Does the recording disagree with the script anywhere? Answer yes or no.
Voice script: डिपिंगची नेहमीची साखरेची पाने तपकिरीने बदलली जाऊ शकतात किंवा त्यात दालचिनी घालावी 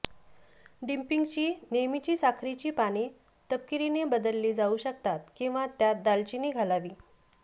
no